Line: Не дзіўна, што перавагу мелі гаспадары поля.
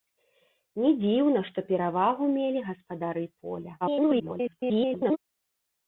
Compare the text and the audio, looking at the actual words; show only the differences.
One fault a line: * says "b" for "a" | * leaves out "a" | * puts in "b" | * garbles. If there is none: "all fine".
* garbles